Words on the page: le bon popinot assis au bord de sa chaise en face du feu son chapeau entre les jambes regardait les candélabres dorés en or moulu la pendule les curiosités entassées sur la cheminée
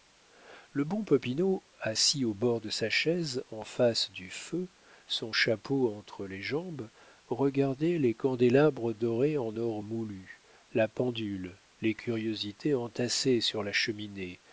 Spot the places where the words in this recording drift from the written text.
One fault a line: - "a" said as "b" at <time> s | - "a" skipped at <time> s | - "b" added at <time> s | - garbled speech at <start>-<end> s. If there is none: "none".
none